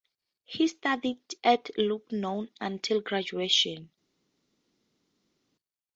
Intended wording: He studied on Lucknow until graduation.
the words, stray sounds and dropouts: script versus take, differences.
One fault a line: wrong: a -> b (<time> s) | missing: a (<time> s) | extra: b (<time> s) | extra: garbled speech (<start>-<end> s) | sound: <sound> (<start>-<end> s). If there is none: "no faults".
wrong: on -> at (1.4 s)